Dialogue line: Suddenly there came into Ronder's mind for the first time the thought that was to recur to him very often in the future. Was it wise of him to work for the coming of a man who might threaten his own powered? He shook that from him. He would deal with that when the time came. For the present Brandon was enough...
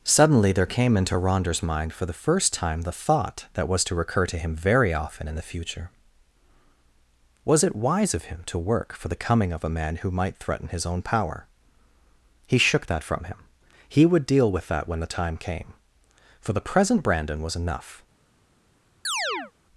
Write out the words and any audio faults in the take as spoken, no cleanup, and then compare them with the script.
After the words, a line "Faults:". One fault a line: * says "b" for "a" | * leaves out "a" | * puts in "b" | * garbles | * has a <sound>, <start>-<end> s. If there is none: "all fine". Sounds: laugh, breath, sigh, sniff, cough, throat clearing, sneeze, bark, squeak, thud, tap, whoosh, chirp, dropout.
Suddenly there came into Ronder's mind for the first time the thought that was to recur to him very often in the future. Was it wise of him to work for the coming of a man who might threaten his own power? He shook that from him. He would deal with that when the time came. For the present Brandon was enough...
Faults:
* says "power" for "powered"
* has a chirp, 19.0-19.5 s